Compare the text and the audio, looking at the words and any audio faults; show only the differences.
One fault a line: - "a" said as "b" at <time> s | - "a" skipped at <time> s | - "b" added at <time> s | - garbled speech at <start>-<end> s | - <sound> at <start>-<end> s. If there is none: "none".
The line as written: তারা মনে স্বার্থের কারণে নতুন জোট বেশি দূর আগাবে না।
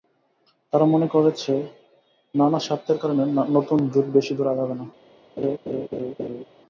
- "করছে নানা" added at 1.1 s
- laugh at 5.4-6.4 s